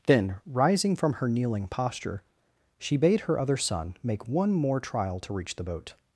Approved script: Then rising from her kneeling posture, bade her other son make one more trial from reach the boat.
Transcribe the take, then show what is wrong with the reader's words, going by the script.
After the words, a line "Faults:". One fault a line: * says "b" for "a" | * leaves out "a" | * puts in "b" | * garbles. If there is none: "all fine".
Then rising from her kneeling posture, she bade her other son make one more trial to reach the boat.
Faults:
* puts in "she"
* says "to" for "from"